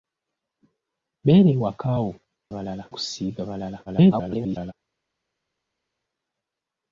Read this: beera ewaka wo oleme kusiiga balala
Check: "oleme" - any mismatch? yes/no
yes